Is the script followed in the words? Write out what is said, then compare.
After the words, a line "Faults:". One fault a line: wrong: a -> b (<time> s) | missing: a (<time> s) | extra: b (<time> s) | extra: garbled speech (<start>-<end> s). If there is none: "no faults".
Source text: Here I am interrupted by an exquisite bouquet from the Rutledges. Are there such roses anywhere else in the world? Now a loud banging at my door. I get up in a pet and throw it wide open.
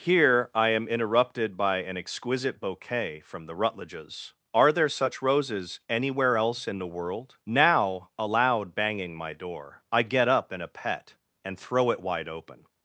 Here I am interrupted by an exquisite bouquet from the Rutledges. Are there such roses anywhere else in the world? Now a loud banging my door. I get up in a pet and throw it wide open.
Faults:
missing: at (9.2 s)